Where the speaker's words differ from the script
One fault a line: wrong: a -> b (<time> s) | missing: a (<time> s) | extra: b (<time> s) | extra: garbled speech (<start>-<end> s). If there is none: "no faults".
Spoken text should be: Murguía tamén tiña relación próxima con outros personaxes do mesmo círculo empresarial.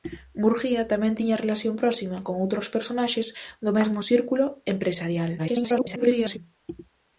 extra: garbled speech (5.4-6.4 s)